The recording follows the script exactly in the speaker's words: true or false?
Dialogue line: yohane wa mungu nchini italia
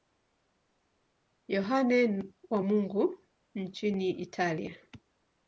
true